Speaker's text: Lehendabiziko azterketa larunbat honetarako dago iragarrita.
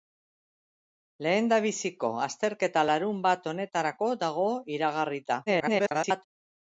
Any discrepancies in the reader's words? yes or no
yes